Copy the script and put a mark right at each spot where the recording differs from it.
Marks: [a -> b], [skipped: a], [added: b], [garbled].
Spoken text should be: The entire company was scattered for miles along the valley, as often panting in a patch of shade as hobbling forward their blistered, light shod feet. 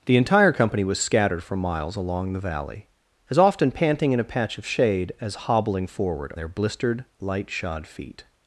The entire company was scattered for miles along the valley, as often panting in a patch of shade as hobbling forward their blistered, light shod feet.